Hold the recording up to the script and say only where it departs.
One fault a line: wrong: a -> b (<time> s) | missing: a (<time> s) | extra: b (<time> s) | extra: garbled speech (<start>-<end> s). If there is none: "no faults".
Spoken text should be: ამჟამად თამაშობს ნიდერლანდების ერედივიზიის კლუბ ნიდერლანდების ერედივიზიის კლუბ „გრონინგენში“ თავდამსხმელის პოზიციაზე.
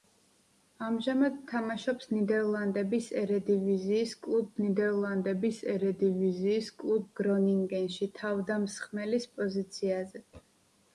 no faults